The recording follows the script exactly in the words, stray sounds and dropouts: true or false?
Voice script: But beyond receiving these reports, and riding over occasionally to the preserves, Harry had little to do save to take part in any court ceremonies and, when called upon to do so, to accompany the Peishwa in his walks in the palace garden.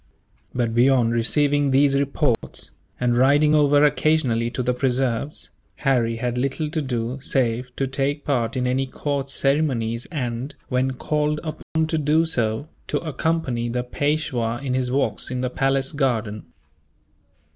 false